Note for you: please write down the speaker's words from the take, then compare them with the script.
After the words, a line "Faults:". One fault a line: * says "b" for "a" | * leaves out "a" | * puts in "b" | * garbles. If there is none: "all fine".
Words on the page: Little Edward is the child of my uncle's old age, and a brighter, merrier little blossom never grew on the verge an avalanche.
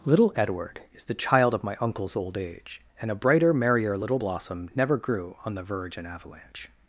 Little Edward is the child of my uncle's old age, and a brighter, merrier little blossom never grew on the verge an avalanche.
Faults:
all fine